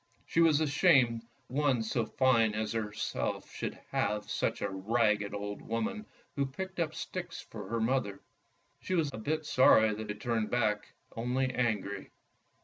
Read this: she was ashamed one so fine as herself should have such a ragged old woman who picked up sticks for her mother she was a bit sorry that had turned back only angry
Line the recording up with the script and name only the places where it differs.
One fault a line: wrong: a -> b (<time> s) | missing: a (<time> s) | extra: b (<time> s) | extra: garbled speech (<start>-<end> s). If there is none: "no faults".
no faults